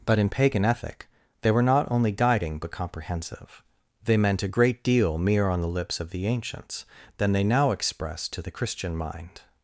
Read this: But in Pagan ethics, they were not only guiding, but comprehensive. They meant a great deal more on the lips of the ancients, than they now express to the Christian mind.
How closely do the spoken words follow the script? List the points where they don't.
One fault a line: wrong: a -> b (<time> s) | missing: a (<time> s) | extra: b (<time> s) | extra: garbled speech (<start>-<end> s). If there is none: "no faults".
wrong: ethics -> ethic (0.7 s)
wrong: more -> mere (5.2 s)